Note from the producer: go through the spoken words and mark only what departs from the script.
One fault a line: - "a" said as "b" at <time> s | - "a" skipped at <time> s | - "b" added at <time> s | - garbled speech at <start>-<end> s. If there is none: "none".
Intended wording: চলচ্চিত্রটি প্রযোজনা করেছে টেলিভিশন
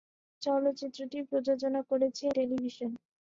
none